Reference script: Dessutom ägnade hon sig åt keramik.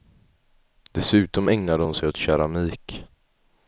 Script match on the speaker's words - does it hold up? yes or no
yes